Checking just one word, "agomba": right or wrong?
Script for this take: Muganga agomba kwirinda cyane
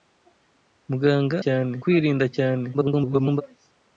wrong